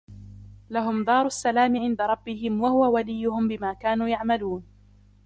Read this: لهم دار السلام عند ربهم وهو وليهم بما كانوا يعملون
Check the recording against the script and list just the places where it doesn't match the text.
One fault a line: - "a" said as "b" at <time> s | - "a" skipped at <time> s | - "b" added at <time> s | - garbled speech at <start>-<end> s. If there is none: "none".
none